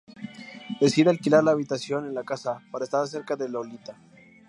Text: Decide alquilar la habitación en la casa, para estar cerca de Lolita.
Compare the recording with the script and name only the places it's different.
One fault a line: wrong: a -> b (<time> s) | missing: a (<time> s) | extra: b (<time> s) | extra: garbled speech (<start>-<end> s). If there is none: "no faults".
no faults